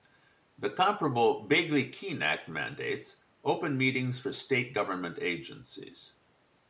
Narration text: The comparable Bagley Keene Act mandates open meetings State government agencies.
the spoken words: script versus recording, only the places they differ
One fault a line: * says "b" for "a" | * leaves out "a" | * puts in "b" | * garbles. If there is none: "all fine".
* puts in "for"